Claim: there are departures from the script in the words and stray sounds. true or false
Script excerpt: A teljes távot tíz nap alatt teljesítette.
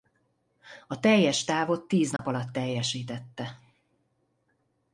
true